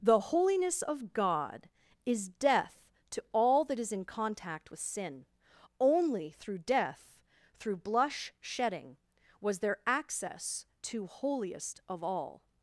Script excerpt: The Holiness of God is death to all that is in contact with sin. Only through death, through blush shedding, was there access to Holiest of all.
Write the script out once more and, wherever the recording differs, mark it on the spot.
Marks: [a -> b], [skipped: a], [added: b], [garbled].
The Holiness of God is death to all that is in contact with sin. Only through death, through blush shedding, was there access to Holiest of all.